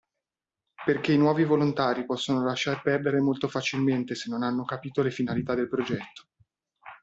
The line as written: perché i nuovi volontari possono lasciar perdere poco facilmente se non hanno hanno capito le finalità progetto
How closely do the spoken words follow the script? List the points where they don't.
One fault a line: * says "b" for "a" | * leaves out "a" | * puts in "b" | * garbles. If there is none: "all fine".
* says "molto" for "poco"
* leaves out "hanno"
* puts in "del"